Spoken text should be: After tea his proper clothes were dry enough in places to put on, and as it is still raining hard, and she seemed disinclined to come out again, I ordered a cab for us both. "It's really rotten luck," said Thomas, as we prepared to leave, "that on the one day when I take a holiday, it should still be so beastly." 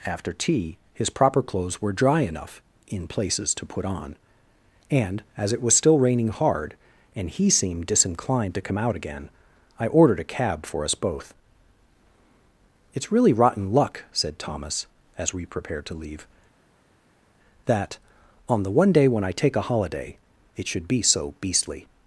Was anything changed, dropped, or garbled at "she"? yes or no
yes